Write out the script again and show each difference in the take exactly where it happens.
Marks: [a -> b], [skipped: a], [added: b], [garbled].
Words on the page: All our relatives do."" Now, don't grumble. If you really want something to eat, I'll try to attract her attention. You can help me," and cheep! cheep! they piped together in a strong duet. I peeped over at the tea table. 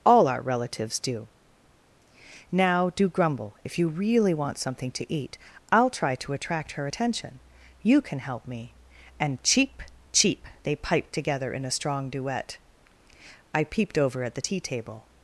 All our relatives do."" Now, [don't -> do] grumble. If you really want something to eat, I'll try to attract her attention. You can help me," and cheep! cheep! they piped together in a strong duet. I peeped over at the tea table.